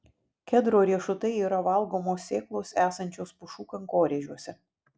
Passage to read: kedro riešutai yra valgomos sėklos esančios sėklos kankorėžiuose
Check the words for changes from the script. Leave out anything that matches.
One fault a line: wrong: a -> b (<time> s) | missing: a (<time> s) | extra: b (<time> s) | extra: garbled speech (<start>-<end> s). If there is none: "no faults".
wrong: sėklos -> pušų (3.4 s)